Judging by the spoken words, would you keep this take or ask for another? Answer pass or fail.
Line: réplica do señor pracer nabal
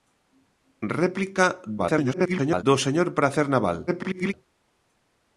fail